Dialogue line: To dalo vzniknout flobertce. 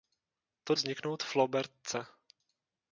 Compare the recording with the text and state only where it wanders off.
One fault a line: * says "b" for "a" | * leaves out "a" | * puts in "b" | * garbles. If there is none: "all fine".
* leaves out "dalo"